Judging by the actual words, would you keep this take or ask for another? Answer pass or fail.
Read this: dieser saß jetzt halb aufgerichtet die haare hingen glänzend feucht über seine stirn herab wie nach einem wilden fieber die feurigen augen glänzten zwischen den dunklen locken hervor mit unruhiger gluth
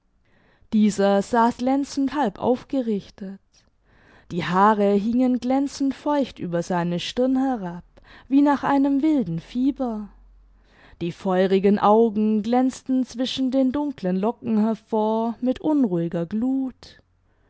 fail